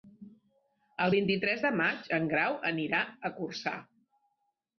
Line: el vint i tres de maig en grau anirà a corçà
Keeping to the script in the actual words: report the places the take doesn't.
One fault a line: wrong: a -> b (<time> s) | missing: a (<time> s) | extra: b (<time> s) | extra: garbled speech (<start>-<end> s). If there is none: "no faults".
no faults